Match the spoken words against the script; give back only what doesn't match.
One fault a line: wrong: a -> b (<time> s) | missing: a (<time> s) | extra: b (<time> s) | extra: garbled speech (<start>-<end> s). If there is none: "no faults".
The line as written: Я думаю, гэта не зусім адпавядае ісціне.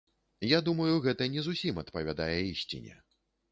no faults